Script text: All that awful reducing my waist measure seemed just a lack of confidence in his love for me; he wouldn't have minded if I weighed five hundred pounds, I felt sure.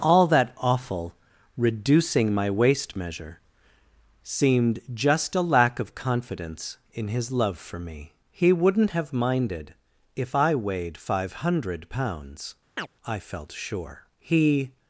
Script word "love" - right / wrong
right